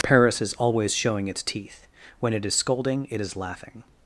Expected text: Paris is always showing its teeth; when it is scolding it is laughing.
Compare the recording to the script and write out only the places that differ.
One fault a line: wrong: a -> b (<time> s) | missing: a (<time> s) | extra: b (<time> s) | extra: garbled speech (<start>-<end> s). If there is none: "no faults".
no faults